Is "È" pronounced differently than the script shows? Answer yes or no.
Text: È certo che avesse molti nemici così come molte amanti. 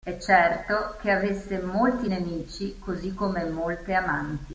no